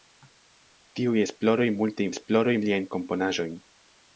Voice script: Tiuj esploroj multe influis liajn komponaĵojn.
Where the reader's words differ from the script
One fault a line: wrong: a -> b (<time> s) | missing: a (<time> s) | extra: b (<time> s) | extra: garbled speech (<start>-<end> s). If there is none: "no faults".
wrong: influis -> esploroj (2.1 s)